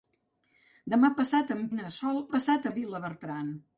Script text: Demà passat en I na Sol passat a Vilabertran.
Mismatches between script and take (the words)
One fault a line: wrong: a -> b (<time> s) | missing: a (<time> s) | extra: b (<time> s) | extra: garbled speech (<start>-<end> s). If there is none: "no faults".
no faults